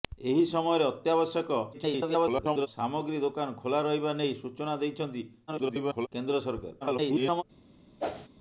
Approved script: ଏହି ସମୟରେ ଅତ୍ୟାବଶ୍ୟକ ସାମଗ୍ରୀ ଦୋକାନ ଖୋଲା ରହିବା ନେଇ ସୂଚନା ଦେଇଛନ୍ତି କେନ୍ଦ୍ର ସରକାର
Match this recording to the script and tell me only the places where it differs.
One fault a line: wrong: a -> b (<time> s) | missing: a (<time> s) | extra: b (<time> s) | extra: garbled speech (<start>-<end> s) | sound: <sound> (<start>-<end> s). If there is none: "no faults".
extra: garbled speech (1.7-2.7 s)
extra: garbled speech (5.5-6.1 s)
extra: garbled speech (6.8-7.4 s)
sound: whoosh (8.0-8.3 s)